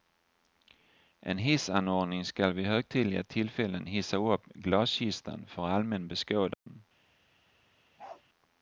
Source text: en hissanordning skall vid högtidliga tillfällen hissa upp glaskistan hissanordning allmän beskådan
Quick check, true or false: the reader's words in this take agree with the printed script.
false